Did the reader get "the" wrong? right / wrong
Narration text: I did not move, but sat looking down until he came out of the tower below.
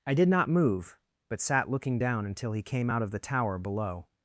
right